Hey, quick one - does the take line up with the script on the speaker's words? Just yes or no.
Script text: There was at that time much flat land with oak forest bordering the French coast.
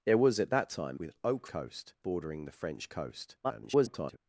no